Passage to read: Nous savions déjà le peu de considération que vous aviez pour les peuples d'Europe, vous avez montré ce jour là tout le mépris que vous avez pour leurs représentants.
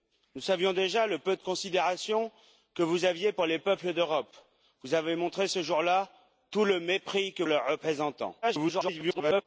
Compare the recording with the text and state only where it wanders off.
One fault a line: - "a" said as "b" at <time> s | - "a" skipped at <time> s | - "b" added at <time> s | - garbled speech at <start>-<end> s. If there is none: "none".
- "vous avez pour" skipped at 7.4 s
- garbled speech at 8.4-9.4 s